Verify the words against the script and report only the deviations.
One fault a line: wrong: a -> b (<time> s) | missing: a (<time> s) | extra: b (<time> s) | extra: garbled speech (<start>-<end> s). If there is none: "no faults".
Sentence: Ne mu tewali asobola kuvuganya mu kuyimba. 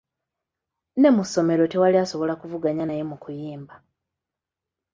extra: ssomero (1.3 s)
extra: naye (2.8 s)